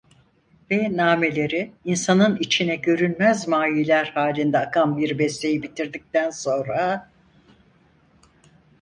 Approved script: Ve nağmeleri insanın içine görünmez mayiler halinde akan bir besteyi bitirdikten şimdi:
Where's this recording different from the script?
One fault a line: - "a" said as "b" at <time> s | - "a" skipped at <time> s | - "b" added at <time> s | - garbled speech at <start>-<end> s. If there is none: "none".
- "şimdi" said as "sonra" at 6.3 s